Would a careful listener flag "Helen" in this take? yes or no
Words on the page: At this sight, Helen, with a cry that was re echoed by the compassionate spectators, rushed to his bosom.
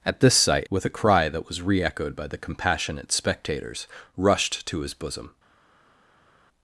yes